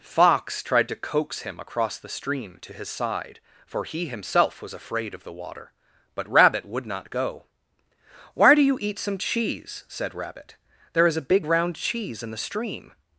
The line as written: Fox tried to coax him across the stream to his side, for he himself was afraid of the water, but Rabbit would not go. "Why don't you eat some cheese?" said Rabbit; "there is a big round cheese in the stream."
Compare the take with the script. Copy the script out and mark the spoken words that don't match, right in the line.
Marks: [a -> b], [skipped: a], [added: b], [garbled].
Fox tried to coax him across the stream to his side, for he himself was afraid of the water, but Rabbit would not go. "Why [don't -> do] you eat some cheese?" said Rabbit; "there is a big round cheese in the stream."